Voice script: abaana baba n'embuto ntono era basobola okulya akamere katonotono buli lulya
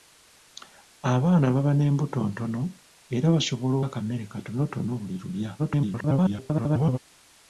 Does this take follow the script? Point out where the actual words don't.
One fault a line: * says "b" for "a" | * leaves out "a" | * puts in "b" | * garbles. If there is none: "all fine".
* leaves out "okulya"
* garbles